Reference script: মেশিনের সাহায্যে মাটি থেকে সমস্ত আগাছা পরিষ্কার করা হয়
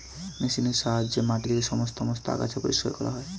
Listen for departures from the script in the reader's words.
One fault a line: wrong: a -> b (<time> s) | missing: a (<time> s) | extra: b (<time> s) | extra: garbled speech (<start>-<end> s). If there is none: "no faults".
extra: সমস্ত (2.0 s)